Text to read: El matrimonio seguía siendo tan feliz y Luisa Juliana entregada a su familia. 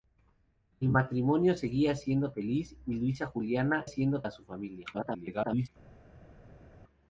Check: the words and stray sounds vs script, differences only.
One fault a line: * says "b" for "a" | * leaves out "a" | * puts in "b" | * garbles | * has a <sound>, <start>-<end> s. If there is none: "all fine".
* leaves out "tan"
* says "siendo" for "entregada"
* garbles